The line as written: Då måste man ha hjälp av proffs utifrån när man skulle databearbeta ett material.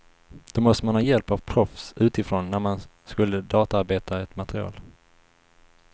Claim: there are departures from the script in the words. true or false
false